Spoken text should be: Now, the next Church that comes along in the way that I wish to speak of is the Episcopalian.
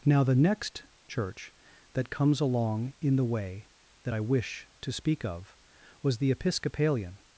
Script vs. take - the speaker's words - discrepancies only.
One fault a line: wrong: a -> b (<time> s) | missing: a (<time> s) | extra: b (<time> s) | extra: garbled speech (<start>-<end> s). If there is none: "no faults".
wrong: is -> was (6.0 s)